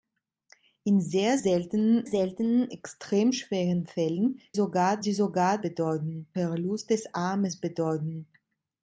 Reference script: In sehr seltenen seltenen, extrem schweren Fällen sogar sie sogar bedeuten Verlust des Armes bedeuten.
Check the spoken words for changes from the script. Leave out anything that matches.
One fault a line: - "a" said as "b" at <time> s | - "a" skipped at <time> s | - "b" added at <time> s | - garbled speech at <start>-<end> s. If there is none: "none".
none